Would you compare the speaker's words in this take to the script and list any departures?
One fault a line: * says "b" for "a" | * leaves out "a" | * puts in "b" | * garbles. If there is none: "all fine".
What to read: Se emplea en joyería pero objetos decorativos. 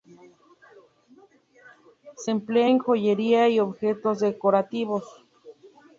* says "y" for "pero"